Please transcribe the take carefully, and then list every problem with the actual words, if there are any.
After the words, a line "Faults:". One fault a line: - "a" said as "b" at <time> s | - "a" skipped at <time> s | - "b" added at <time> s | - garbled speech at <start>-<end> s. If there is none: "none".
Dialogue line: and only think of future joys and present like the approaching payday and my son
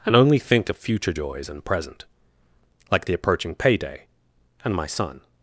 and only think of future joys and present like the approaching payday and my son
Faults:
none